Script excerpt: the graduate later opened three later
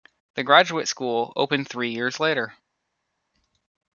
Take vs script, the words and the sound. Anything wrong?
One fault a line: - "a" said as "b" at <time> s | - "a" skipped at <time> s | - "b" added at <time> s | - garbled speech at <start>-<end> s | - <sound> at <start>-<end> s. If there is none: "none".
- "later" said as "school" at 0.9 s
- "years" added at 1.9 s